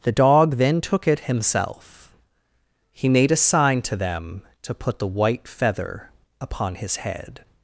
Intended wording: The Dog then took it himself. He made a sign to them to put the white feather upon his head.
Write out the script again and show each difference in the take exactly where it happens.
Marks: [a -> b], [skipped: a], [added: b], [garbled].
The Dog then took it himself. He made a sign to them to put the white feather upon his head.